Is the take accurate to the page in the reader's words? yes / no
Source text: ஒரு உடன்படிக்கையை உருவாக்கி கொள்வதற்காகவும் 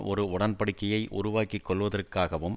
yes